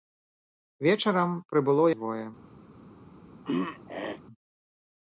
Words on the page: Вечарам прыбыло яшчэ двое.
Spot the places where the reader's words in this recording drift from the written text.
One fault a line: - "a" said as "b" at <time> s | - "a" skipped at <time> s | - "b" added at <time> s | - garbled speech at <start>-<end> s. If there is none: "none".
- "яшчэ" skipped at 1.9 s